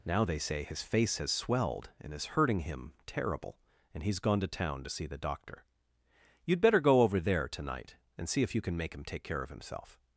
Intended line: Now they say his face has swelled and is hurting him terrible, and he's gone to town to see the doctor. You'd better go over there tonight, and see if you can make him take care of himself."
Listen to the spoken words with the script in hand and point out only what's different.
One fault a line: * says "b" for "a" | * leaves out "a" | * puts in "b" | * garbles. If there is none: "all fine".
all fine